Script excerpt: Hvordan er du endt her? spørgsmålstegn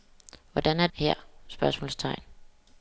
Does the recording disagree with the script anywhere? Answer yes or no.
yes